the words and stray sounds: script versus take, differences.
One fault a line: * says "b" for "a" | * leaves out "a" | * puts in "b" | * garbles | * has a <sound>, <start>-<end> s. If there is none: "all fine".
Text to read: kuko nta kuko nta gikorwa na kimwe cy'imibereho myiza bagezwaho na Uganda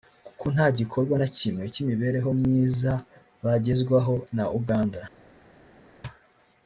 * leaves out "kuko nta"